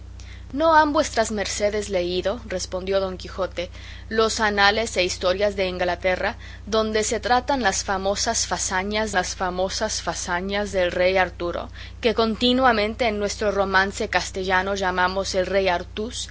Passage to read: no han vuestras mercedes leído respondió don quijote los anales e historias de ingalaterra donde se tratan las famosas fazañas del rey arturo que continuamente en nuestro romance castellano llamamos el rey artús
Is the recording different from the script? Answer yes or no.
yes